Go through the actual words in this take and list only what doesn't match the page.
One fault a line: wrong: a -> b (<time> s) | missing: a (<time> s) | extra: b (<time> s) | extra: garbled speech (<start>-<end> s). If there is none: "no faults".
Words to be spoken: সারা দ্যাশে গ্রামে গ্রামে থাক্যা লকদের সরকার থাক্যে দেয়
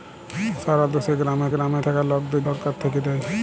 no faults